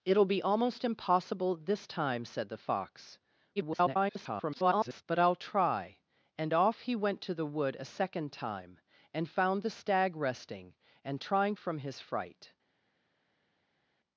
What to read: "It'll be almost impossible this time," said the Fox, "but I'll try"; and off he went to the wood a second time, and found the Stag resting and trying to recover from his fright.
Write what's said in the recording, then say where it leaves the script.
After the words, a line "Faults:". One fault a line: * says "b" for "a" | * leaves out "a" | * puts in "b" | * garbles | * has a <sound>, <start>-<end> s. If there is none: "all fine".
"It'll be almost impossible this time," said the Fox, [garbled] "but I'll try"; and off he went to the wood a second time, and found the Stag resting and trying from his fright.
Faults:
* garbles
* leaves out "to recover"